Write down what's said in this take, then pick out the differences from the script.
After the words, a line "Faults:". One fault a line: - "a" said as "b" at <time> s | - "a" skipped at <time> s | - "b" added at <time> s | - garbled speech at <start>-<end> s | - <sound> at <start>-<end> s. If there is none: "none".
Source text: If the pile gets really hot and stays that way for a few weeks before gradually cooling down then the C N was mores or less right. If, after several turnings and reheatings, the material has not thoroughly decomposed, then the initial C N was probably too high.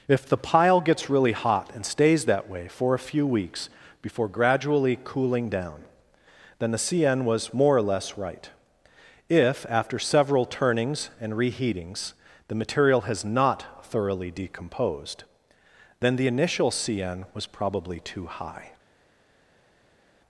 If the pile gets really hot and stays that way for a few weeks before gradually cooling down then the C N was more or less right. If, after several turnings and reheatings, the material has not thoroughly decomposed, then the initial C N was probably too high.
Faults:
- "mores" said as "more" at 7.5 s